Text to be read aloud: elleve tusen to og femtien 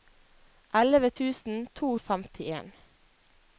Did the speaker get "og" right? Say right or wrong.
right